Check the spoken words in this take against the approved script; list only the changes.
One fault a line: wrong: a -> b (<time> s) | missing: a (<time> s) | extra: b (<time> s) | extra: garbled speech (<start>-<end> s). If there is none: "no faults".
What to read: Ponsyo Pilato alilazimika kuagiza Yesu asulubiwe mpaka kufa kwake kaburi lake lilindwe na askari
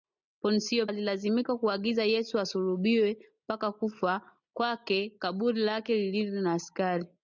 missing: Pilato (0.9 s)